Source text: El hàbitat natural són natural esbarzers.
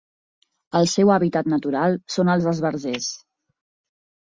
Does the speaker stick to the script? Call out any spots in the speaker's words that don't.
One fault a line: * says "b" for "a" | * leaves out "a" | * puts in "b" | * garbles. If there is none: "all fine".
* puts in "seu"
* says "els" for "natural"